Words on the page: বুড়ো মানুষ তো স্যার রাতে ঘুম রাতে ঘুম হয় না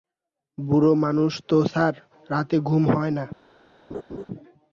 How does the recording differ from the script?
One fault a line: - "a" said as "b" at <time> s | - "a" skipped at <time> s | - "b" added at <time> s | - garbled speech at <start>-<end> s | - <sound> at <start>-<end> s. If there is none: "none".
- "রাতে ঘুম" skipped at 2.8 s
- laugh at 3.9-4.2 s